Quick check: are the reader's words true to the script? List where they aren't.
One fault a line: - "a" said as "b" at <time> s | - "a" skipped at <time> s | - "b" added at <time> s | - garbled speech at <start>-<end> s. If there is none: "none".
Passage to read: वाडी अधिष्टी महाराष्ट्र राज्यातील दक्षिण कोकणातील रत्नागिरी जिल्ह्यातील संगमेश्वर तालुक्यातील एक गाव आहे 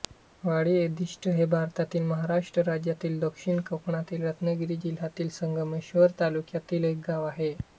- "हे भारतातील" added at 1.3 s